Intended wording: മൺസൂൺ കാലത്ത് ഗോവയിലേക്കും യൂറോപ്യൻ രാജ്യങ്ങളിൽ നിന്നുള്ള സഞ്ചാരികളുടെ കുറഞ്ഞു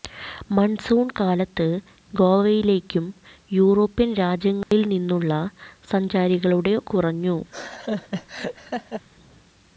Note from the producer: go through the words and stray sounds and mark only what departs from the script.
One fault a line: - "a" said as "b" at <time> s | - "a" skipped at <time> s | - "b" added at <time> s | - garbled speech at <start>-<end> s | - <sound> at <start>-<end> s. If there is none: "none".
- dropout at 4.6-4.7 s
- laugh at 7.5-9.0 s